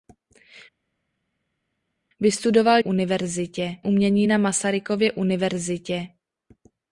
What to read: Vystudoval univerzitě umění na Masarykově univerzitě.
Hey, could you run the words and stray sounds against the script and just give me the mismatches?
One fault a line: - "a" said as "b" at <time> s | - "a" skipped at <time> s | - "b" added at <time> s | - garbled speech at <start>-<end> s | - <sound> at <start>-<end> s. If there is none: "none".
none